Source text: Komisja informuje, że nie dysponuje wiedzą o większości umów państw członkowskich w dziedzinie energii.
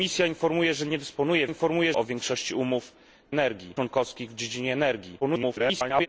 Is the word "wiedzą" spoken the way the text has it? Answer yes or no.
no